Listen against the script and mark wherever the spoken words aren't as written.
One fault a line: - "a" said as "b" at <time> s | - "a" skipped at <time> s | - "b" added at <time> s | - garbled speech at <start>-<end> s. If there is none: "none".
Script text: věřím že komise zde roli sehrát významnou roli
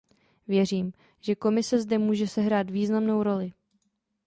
- "roli" said as "může" at 2.0 s